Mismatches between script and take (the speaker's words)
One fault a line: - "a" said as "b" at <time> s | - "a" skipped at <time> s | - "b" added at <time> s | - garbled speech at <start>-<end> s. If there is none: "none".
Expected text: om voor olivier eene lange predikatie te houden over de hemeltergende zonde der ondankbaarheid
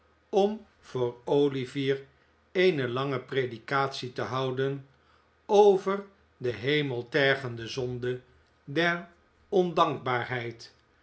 none